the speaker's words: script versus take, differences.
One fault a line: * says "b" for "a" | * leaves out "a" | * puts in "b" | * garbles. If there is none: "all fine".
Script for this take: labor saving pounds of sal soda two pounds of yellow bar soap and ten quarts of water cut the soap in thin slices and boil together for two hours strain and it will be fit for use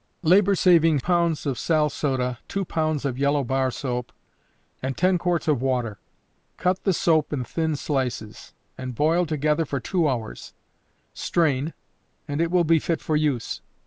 all fine